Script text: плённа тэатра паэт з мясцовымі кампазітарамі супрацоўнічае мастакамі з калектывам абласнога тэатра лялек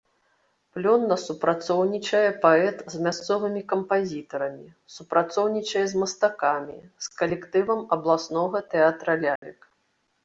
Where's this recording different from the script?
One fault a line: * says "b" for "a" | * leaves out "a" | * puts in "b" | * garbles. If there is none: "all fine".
* says "супрацоўнічае" for "тэатра"
* puts in "з"